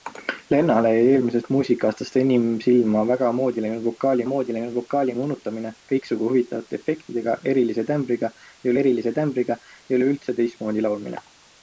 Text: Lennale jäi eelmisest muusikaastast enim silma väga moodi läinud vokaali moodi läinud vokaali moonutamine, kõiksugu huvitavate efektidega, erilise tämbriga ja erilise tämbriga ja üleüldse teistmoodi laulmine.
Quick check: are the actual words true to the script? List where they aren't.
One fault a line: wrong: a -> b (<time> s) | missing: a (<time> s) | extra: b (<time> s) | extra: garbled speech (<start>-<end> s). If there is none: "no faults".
no faults